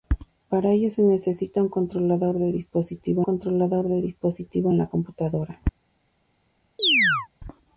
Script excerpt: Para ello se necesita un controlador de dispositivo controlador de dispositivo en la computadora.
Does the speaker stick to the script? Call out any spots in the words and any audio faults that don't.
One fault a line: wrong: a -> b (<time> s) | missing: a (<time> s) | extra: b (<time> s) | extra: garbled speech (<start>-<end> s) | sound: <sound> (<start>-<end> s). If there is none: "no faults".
sound: chirp (6.8-7.3 s)